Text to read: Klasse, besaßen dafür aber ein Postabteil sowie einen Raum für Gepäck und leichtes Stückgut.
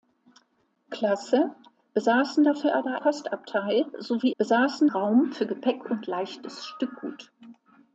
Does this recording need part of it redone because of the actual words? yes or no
yes